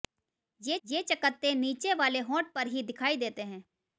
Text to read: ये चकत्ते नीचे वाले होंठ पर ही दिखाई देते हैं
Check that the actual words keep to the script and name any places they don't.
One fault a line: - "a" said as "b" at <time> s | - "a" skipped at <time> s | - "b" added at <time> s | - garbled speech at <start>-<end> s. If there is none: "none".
- "ये" added at 0.8 s